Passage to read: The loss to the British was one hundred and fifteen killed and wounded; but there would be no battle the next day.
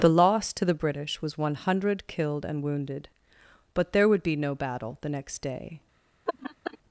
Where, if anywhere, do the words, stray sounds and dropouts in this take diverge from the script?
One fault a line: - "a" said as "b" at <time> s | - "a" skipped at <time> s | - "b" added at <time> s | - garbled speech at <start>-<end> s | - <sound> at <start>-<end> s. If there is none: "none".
- "and fifteen" skipped at 2.1 s
- laugh at 6.3-6.8 s